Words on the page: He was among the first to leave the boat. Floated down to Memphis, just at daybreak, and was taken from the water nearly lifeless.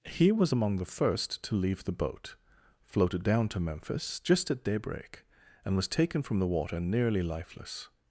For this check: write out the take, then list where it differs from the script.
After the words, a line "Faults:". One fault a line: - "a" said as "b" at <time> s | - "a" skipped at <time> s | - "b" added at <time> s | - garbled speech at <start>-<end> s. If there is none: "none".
He was among the first to leave the boat. Floated down to Memphis, just at daybreak, and was taken from the water nearly lifeless.
Faults:
none